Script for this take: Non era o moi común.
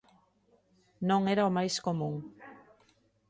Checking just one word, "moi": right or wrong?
wrong